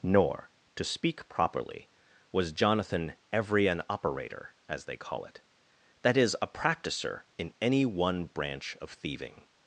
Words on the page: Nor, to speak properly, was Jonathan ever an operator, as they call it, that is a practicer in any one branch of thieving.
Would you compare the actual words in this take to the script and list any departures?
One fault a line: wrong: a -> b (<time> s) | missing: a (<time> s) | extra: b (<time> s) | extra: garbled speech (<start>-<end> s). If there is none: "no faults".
wrong: ever -> every (3.3 s)